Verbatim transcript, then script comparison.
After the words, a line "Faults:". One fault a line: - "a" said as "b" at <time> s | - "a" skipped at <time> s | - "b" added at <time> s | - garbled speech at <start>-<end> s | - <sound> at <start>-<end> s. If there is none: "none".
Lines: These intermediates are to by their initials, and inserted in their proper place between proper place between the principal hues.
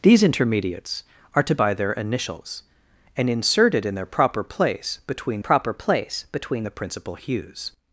These intermediates are to by their initials, and inserted in their proper place between proper place between the principal hues.
Faults:
none